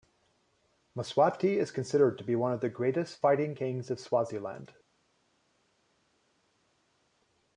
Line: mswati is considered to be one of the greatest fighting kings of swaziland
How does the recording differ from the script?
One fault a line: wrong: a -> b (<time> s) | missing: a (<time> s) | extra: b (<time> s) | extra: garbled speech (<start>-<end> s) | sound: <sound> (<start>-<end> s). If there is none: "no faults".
no faults